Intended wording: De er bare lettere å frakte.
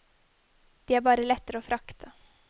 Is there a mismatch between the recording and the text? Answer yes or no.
no